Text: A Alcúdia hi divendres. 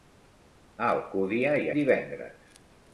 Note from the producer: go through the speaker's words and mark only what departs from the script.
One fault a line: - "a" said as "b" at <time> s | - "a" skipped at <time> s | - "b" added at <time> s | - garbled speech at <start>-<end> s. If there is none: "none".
none